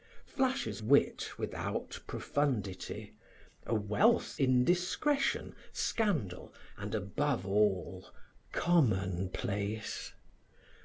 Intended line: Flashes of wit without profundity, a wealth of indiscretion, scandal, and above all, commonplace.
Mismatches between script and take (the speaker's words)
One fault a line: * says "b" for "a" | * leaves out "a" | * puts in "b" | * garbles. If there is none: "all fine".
* leaves out "of"
* leaves out "of"